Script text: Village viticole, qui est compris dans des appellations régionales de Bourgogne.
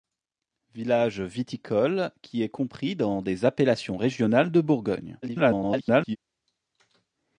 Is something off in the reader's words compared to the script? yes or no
yes